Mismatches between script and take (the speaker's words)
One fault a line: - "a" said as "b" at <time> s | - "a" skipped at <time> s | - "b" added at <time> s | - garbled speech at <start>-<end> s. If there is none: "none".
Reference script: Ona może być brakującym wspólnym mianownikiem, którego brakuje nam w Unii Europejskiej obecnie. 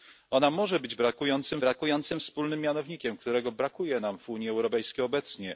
- "brakującym" added at 1.6 s